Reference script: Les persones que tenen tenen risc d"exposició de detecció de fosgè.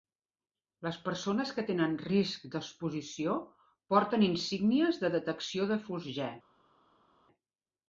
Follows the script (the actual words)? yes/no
no